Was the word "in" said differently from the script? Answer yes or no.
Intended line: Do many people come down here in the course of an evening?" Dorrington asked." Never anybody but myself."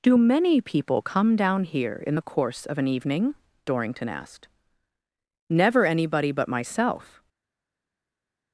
no